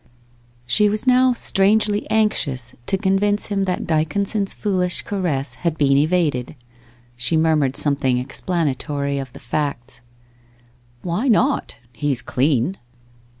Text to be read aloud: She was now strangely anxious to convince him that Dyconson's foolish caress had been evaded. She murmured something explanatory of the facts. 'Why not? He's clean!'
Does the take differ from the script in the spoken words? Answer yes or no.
no